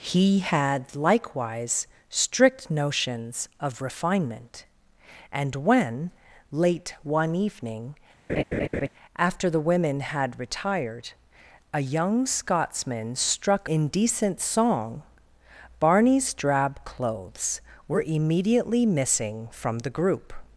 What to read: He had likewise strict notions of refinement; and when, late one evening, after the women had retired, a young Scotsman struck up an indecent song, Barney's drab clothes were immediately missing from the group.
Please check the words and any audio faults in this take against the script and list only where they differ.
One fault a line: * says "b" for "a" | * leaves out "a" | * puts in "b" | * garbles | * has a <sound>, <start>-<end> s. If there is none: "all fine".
* has a laugh, 8.3-8.9 s
* leaves out "up an"